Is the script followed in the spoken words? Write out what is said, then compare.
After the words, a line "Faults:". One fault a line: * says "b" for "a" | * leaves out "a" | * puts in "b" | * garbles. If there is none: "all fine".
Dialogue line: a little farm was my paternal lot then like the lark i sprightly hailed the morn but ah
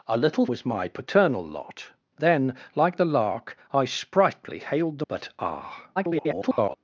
a little was my paternal lot then like the lark i sprightly hailed the but ah [garbled]
Faults:
* leaves out "farm"
* leaves out "morn"
* garbles